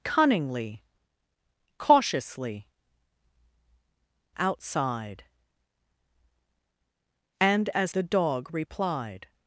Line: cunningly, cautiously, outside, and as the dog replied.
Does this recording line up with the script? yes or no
yes